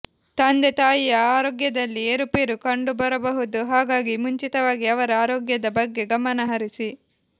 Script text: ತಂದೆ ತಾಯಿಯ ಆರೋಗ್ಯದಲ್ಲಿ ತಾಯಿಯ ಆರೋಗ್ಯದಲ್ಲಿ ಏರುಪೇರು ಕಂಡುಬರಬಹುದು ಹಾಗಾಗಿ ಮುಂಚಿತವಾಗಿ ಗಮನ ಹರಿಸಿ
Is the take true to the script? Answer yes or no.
no